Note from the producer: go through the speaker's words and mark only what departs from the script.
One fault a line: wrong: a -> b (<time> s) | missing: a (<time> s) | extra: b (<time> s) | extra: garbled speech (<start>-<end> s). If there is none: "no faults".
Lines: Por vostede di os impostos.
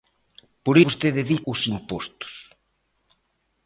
no faults